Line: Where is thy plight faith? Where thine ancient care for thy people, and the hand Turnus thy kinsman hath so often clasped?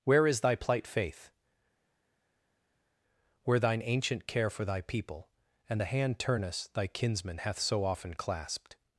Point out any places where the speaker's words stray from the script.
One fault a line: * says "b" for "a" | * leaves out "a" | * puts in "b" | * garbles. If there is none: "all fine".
all fine